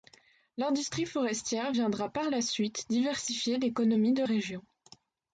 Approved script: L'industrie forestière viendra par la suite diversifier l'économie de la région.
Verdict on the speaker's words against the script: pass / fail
fail